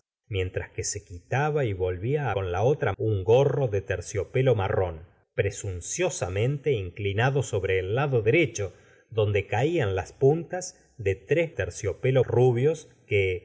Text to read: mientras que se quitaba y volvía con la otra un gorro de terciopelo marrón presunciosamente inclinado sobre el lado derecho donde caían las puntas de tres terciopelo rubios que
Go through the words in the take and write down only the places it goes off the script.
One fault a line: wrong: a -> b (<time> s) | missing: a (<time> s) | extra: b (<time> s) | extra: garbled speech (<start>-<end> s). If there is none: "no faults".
no faults